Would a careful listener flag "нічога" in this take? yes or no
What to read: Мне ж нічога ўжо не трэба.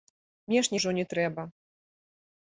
yes